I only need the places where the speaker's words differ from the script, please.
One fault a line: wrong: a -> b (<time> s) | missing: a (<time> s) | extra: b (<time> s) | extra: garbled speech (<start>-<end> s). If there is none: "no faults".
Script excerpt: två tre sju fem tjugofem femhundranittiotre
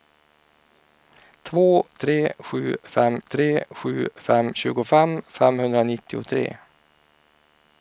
extra: tre sju fem (3.3 s)